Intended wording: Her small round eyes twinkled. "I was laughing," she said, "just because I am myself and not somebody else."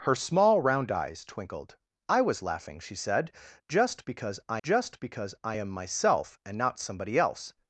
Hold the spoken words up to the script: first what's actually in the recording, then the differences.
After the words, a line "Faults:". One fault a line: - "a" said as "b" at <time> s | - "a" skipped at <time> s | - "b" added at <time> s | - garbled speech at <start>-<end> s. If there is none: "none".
Her small round eyes twinkled. "I was laughing," she said, "just because I just because I am myself and not somebody else."
Faults:
- "just because I" added at 4.6 s